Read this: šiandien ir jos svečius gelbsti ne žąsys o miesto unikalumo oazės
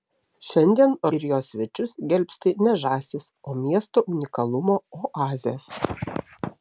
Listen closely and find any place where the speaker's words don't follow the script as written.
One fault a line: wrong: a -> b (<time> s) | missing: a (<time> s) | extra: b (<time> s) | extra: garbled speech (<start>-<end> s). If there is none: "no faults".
no faults